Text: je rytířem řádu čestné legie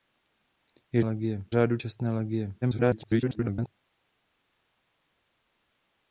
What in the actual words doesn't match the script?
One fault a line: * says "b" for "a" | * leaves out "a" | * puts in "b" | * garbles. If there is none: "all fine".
* says "legie" for "rytířem"
* garbles